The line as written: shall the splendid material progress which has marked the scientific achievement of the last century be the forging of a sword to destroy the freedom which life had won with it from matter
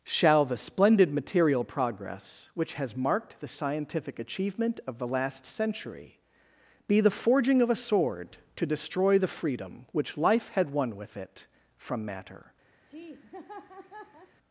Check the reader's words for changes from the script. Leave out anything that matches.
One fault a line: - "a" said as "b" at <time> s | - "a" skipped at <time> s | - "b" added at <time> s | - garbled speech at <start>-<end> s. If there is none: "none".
none